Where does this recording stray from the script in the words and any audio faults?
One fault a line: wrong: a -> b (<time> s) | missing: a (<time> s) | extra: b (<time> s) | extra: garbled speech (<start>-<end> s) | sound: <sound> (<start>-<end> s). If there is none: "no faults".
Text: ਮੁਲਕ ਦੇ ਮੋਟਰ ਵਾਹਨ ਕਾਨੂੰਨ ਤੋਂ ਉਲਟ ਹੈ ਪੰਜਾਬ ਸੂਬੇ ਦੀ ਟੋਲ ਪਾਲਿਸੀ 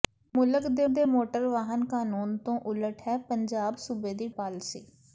extra: ਦੇ (0.9 s)
missing: ਟੋਲ (4.3 s)